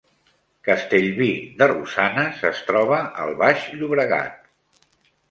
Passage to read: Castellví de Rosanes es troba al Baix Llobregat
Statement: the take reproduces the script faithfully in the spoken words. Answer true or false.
true